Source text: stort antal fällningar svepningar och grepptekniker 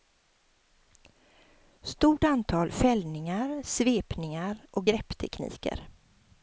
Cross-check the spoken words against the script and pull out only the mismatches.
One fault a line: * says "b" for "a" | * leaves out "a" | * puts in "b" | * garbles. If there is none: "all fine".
all fine